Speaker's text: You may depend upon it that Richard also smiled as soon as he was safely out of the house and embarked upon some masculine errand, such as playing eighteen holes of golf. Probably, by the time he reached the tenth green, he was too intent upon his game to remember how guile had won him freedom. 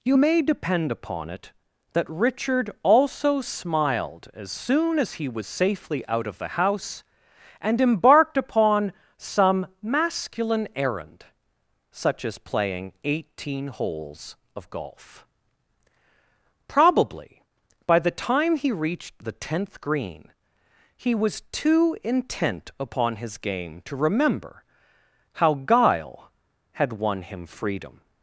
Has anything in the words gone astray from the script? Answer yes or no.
no